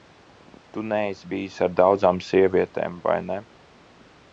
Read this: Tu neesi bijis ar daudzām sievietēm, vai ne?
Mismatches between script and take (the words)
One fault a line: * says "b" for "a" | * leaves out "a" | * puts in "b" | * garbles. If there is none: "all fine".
all fine